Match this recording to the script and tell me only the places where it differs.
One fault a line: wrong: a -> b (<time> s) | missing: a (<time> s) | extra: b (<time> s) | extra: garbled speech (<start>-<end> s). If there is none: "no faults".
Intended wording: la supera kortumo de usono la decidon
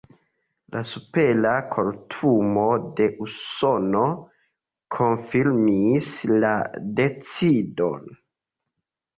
extra: konfirmis (5.0 s)